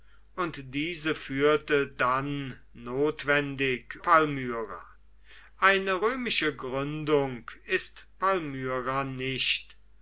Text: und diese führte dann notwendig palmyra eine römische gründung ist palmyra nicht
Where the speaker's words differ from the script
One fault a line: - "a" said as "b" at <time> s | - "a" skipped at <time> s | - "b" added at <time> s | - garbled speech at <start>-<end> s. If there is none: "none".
none